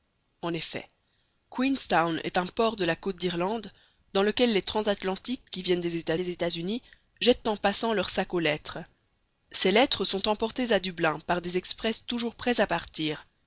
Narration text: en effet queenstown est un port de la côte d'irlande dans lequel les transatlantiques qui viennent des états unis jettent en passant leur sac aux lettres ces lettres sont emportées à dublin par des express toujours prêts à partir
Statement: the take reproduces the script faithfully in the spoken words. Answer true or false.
false